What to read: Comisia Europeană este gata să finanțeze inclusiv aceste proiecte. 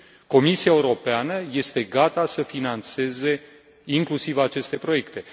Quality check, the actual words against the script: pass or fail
pass